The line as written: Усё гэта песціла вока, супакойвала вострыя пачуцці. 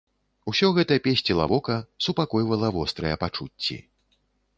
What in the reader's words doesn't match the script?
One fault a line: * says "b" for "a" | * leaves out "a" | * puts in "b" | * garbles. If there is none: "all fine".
all fine